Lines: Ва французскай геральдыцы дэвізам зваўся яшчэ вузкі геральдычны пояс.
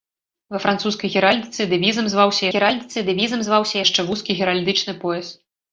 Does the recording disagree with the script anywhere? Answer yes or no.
yes